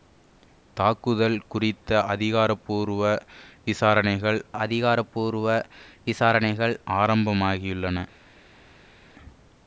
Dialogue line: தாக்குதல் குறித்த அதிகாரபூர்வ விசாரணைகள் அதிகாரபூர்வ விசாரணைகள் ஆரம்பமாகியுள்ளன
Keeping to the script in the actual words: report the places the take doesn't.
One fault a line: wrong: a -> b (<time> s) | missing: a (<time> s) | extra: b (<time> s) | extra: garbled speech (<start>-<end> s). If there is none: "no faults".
no faults